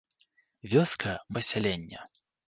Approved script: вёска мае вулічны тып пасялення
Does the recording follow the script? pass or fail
fail